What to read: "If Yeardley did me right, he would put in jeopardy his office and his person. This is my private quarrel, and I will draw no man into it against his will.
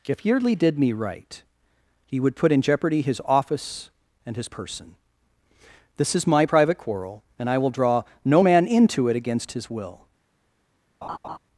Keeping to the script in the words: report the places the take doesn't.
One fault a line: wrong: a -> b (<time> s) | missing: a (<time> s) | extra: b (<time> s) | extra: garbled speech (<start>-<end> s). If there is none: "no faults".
no faults